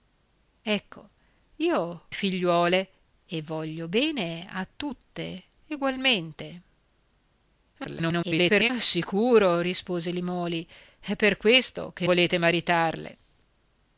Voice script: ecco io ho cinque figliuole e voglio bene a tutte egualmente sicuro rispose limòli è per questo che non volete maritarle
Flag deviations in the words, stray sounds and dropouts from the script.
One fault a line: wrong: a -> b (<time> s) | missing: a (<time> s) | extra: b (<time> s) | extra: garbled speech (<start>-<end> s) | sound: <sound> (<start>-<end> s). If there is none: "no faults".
missing: ho cinque (2.0 s)
extra: garbled speech (7.8-8.7 s)
missing: non (12.1 s)